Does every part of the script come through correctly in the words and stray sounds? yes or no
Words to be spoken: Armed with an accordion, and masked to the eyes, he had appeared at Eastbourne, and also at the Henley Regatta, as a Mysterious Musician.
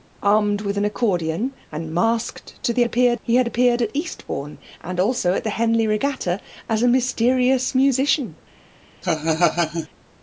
no